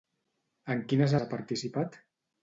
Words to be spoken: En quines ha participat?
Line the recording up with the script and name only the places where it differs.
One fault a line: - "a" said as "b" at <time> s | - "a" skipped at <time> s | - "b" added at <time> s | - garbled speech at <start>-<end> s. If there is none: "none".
none